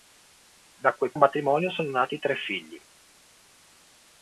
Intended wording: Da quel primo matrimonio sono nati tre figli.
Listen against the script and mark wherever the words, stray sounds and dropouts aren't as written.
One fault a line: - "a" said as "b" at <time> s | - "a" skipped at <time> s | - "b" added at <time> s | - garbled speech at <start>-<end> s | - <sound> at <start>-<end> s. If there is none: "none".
- "primo" skipped at 1.1 s